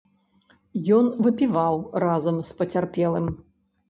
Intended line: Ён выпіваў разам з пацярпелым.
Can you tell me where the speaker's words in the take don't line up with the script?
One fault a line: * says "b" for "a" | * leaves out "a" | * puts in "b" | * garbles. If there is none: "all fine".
all fine